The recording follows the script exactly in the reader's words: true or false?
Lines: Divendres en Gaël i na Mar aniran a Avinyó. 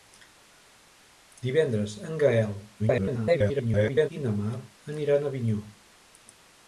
false